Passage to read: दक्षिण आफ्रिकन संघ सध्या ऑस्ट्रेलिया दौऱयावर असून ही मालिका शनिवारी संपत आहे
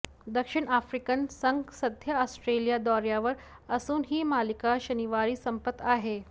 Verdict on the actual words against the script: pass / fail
pass